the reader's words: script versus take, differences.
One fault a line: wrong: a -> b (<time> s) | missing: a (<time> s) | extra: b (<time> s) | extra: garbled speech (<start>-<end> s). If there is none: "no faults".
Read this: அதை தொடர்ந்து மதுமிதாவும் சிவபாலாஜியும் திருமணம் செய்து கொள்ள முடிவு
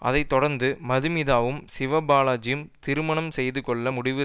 no faults